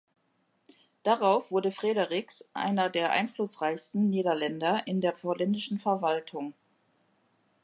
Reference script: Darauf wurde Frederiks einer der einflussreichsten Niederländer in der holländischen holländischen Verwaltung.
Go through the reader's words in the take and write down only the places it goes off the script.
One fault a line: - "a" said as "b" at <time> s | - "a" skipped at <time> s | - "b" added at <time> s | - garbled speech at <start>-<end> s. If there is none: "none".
- "holländischen" skipped at 5.8 s